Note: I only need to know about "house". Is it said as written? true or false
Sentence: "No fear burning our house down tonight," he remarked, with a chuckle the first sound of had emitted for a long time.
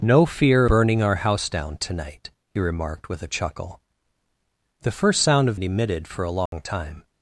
true